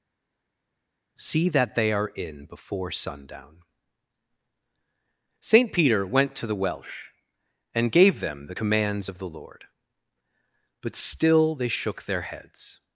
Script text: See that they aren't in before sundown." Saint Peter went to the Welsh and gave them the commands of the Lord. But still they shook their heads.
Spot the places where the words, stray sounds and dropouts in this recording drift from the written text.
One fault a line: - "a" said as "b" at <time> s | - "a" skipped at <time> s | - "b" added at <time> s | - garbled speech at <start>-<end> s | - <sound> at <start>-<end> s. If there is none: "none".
- "aren't" said as "are" at 1.9 s